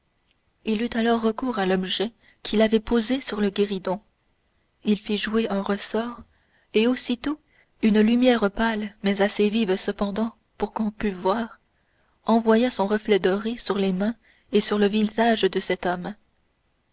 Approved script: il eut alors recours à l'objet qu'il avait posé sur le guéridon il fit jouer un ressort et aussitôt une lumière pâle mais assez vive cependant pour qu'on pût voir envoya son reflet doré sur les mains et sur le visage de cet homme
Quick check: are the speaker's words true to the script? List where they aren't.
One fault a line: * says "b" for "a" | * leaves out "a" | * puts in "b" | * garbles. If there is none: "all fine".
all fine